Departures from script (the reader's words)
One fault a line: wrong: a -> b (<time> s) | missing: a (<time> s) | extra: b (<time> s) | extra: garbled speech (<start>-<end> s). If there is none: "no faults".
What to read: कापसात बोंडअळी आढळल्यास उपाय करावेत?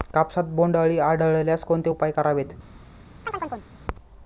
extra: कोणते (1.6 s)